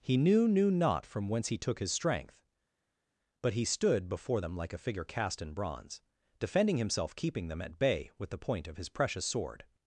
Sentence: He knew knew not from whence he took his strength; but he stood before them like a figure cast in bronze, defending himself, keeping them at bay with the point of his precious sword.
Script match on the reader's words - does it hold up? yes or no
yes